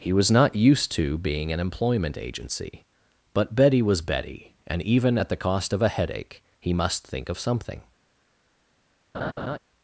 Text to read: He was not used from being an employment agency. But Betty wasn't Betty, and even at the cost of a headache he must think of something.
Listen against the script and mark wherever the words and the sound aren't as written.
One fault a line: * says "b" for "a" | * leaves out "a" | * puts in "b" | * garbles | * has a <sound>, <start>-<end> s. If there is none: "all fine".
* says "to" for "from"
* says "was" for "wasn't"
* has a laugh, 9.1-9.6 s